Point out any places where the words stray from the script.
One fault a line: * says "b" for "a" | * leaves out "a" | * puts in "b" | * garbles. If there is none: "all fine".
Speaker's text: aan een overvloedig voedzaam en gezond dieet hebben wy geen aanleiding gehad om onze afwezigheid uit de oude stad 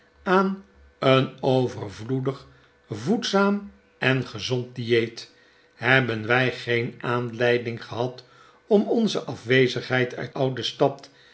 * leaves out "de"